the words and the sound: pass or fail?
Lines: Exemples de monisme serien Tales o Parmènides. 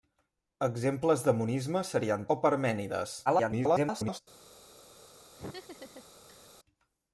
fail